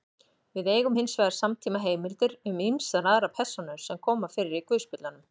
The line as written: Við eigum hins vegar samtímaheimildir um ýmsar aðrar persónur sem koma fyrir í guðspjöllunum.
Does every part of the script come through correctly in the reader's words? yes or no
yes